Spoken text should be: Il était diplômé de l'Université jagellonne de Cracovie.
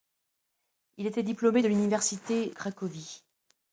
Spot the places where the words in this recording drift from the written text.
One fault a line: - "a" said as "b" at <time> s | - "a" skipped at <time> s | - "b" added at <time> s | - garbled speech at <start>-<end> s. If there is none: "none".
- "jagellonne de" skipped at 2.5 s